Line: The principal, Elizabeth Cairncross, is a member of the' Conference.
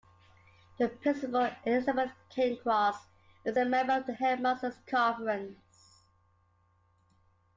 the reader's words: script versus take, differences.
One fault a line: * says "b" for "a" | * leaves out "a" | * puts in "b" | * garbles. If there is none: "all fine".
* puts in "Headmasters"